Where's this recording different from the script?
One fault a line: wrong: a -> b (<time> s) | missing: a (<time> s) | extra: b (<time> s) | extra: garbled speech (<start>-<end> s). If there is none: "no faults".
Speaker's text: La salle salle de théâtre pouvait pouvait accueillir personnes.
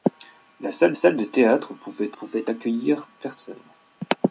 no faults